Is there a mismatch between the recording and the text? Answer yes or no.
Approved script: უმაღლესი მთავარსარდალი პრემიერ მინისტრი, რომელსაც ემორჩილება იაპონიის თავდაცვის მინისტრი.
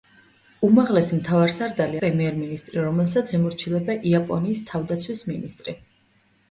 no